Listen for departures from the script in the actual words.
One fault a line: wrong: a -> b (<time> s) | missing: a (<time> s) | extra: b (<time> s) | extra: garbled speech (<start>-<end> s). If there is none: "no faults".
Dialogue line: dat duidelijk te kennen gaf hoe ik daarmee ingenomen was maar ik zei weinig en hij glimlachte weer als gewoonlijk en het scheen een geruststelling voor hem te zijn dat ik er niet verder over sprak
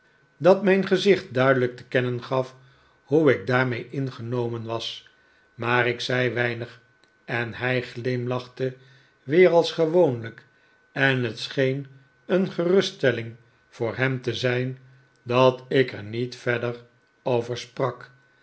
extra: mijn gezicht (0.6 s)